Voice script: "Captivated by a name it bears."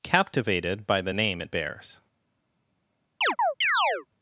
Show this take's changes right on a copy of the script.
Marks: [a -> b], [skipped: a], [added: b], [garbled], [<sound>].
"Captivated by [a -> the] name it bears." [chirp]